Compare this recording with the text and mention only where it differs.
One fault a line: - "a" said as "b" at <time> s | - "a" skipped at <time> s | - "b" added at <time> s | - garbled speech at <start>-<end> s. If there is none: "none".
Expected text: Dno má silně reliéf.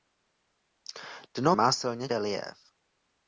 none